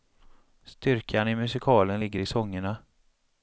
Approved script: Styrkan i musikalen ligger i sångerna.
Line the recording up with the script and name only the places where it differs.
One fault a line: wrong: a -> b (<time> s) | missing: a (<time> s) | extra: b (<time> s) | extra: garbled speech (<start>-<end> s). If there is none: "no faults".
no faults